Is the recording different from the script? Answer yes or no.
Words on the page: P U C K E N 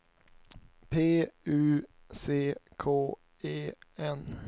no